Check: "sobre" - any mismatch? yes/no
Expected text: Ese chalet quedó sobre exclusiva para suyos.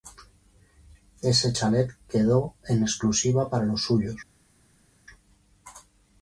yes